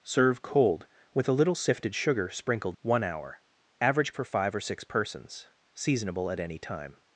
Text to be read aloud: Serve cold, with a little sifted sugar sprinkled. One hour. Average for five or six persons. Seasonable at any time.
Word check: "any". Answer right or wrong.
right